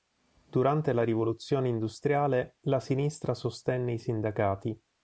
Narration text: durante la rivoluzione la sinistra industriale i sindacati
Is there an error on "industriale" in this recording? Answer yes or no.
yes